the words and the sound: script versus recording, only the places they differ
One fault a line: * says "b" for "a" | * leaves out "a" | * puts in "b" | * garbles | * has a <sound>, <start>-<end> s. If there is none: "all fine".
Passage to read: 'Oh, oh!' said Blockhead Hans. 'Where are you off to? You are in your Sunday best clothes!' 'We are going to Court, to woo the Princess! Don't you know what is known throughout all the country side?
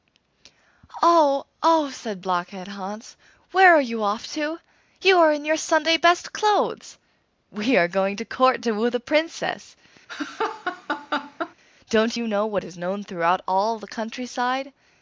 * has a laugh, 10.1-11.5 s